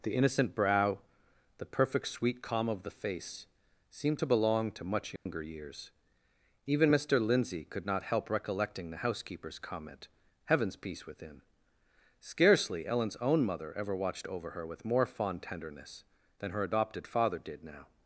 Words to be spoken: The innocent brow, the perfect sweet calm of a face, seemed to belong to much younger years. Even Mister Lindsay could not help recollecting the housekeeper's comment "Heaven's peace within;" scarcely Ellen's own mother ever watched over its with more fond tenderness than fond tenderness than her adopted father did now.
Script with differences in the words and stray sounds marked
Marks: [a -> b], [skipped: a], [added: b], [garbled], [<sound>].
The innocent brow, the perfect sweet calm of [a -> the] face, seemed to belong to much younger [dropout] years. Even Mister Lindsay could not help recollecting the housekeeper's comment "Heaven's peace within;" scarcely Ellen's own mother ever watched over [its -> her] with more fond tenderness than [skipped: fond tenderness than] her adopted father did now.